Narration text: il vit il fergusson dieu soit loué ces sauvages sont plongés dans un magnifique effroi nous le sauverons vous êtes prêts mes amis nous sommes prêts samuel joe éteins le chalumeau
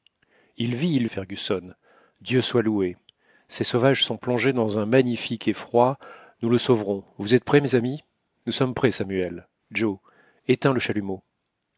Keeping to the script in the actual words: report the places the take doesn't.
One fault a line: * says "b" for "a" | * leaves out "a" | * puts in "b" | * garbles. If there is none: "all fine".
all fine